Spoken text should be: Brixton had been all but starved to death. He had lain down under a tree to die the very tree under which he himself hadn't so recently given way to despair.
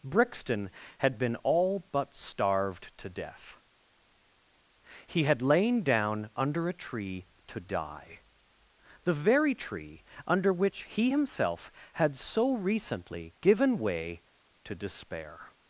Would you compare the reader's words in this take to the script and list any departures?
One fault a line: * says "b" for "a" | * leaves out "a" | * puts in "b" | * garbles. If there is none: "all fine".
* says "had" for "hadn't"